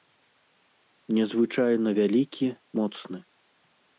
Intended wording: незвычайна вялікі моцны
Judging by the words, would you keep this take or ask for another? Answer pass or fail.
pass